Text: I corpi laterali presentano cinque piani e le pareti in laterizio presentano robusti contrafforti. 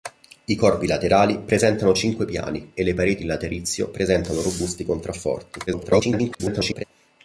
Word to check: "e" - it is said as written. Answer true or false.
true